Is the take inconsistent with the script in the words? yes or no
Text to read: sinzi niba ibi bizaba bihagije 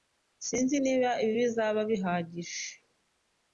no